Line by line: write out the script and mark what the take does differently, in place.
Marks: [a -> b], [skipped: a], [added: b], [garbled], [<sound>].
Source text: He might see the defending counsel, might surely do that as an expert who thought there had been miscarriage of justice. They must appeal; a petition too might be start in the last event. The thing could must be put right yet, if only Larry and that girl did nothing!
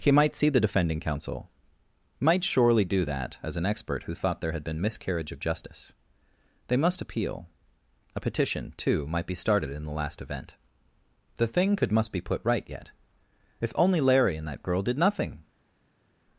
He might see the defending counsel, might surely do that as an expert who thought there had been miscarriage of justice. They must appeal; a petition too might be [start -> started] in the last event. The thing could must be put right yet, if only Larry and that girl did nothing!